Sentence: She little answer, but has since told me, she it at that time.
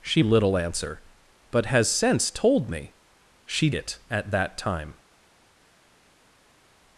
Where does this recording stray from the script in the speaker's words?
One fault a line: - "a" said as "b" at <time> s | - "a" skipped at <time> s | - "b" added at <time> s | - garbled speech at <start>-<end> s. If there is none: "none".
none